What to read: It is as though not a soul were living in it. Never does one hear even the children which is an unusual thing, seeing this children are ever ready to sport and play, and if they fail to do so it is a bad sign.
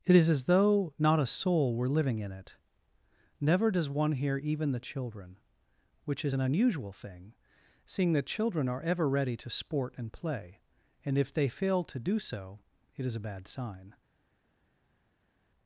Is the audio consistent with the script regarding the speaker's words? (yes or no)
no